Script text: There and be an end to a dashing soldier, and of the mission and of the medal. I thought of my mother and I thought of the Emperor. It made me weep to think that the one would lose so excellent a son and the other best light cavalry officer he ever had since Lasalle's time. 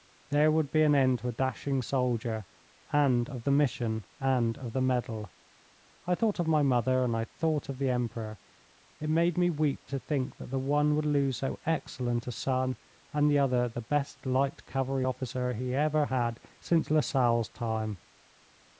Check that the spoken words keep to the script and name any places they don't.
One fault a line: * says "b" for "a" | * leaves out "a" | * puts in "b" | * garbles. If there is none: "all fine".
* says "would" for "and"
* puts in "the"